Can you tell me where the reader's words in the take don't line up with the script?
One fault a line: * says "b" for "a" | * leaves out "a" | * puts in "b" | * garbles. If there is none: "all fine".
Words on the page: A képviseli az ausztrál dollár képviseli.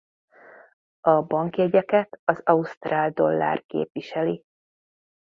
* says "bankjegyeket" for "képviseli"